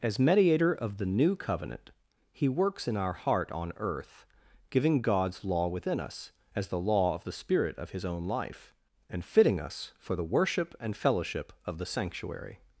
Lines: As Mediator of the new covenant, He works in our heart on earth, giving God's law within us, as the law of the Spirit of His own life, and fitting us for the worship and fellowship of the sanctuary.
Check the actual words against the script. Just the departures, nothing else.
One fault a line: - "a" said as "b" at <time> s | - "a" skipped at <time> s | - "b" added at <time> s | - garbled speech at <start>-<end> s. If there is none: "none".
none